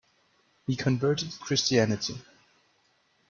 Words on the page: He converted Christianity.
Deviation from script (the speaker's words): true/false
false